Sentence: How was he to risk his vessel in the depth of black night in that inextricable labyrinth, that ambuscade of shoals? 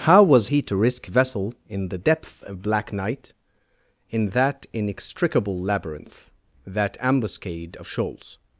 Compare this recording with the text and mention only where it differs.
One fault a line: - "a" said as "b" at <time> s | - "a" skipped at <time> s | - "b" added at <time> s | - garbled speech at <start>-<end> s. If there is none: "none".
- "his" skipped at 1.1 s